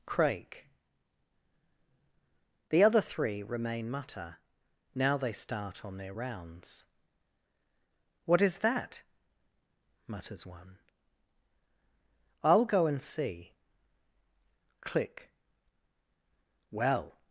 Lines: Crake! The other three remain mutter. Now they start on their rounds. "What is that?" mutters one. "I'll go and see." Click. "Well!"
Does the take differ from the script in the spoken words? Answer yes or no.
no